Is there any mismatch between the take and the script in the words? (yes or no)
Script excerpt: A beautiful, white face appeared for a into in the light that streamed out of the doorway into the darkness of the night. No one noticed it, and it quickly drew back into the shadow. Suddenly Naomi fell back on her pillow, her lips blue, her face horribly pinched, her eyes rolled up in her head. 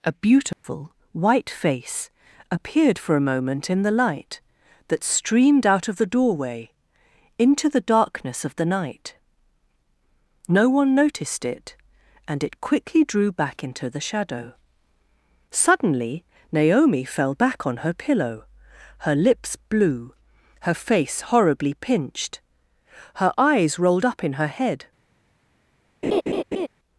yes